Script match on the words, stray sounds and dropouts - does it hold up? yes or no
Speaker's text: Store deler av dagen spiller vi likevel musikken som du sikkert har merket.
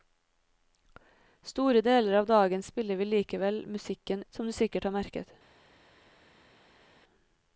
yes